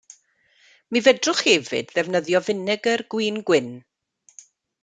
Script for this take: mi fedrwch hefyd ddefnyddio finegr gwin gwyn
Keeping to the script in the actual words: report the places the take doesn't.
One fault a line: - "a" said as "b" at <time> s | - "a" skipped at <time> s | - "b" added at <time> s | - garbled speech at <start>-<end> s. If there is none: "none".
none